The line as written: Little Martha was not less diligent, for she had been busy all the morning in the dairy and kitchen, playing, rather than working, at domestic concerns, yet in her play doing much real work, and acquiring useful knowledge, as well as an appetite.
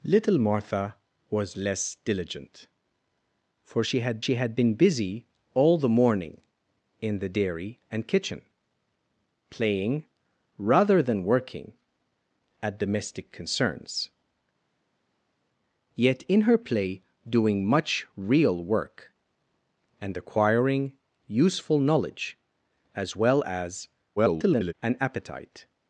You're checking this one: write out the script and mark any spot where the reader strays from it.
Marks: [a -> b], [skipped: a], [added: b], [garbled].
Little Martha was [skipped: not] less diligent, for she had [added: she had] been busy all the morning in the dairy and kitchen, playing, rather than working, at domestic concerns, yet in her play doing much real work, and acquiring useful knowledge, as well as [garbled] an appetite.